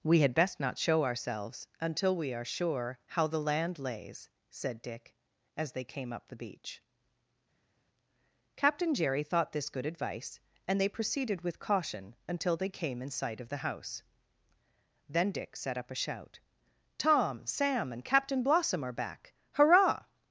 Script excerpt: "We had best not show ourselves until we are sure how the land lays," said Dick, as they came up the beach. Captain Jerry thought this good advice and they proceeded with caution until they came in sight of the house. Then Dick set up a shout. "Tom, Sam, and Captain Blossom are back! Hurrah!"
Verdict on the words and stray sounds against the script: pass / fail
pass